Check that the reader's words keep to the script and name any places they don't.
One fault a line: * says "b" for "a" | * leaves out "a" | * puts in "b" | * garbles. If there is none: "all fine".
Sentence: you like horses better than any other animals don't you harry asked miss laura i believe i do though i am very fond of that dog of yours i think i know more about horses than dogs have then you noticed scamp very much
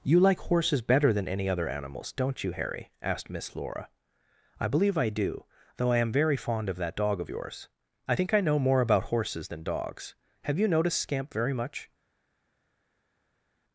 * leaves out "then"